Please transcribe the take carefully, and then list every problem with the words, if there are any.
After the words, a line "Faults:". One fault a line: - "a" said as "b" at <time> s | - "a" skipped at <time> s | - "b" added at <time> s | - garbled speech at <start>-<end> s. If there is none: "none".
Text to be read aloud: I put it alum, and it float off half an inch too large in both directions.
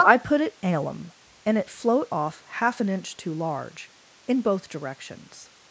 I put it alum, and it float off half an inch too large in both directions.
Faults:
none